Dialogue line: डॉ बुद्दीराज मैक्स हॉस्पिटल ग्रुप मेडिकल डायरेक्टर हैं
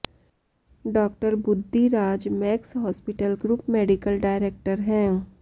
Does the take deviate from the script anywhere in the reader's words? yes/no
no